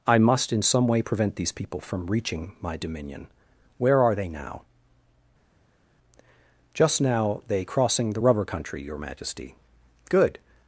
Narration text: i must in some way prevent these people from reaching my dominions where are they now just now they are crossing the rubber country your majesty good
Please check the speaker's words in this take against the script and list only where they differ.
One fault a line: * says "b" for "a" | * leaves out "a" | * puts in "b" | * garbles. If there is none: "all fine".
* says "dominion" for "dominions"
* leaves out "are"